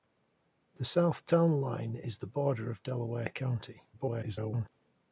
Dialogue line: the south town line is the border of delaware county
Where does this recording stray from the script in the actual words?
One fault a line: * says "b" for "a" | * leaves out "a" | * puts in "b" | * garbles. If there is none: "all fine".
* garbles